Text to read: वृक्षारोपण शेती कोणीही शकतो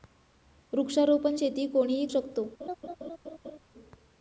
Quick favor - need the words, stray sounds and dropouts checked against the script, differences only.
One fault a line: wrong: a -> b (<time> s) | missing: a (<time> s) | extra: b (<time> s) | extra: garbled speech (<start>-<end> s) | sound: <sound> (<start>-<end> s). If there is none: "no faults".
sound: laugh (2.6-3.6 s)